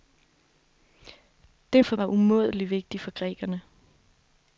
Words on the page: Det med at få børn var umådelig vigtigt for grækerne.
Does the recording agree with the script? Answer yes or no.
no